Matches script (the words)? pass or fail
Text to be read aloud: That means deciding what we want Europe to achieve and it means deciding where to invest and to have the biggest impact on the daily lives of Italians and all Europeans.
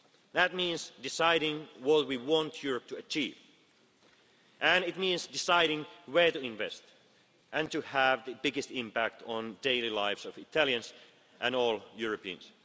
pass